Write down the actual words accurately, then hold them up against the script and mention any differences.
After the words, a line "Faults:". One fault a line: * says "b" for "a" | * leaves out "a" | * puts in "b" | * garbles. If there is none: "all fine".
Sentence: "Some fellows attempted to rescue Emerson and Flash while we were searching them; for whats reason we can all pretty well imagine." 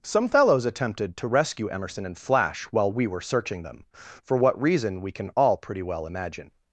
"Some fellows attempted to rescue Emerson and Flash while we were searching them; for what reason we can all pretty well imagine."
Faults:
* says "what" for "whats"